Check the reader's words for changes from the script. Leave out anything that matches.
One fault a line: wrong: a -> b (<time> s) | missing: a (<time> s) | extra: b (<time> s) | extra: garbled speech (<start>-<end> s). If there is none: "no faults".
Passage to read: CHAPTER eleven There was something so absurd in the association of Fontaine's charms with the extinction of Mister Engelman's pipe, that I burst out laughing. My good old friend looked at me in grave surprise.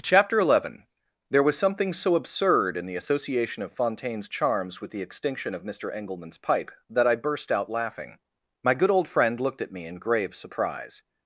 no faults